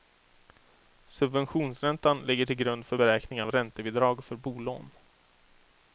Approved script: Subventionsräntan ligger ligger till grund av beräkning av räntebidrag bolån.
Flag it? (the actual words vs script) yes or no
yes